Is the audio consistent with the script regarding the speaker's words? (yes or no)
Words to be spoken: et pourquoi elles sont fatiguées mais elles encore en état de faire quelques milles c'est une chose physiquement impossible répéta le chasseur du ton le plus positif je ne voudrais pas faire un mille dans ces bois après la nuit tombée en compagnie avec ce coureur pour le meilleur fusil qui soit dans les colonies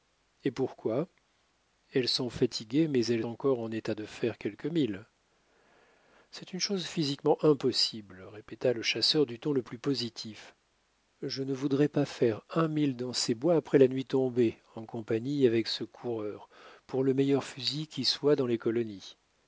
yes